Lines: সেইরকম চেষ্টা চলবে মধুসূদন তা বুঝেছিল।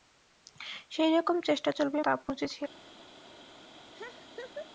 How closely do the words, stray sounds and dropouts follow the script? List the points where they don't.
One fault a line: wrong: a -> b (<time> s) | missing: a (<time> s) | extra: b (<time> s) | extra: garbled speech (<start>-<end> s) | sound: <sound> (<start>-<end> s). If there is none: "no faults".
missing: মধুসূদন (2.0 s)
sound: laugh (3.9-4.7 s)